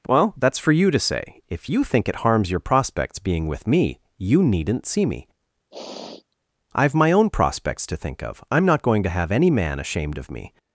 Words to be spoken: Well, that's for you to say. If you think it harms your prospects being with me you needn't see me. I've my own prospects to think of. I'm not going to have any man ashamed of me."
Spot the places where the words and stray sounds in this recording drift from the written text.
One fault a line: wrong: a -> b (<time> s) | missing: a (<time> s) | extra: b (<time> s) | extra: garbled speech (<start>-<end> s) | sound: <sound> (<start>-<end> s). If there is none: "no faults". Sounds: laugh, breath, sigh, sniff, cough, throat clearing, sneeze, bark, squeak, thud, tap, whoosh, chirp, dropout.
sound: sniff (5.7-6.4 s)